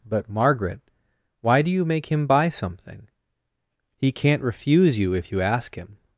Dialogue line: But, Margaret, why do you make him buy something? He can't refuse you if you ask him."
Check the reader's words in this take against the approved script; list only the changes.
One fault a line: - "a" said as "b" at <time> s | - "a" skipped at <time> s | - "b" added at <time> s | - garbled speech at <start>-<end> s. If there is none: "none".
none